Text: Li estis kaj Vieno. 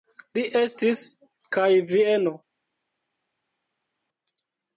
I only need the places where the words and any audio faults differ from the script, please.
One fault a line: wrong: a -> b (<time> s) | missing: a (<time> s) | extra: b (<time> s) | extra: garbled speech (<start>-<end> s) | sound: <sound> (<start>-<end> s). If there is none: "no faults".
no faults